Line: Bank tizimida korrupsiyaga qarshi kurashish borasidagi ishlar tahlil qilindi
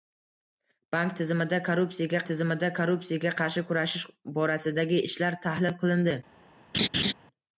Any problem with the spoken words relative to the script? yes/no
yes